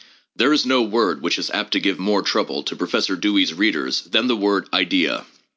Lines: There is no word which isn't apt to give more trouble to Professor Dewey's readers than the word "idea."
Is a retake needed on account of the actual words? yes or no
yes